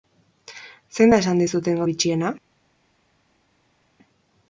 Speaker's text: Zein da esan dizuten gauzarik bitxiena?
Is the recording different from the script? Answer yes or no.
yes